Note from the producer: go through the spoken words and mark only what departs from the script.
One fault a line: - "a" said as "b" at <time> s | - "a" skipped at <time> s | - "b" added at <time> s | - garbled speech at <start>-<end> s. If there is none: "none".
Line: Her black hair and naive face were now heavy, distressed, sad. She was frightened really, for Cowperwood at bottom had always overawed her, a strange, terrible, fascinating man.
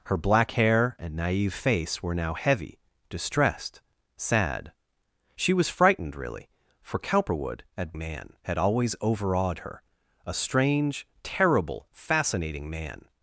- "bottom" said as "man" at 8.0 s